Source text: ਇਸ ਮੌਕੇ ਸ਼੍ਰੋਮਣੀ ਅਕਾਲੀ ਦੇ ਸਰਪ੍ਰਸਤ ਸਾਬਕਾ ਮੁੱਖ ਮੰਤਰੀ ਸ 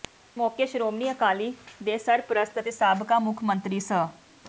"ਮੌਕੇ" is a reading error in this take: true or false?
false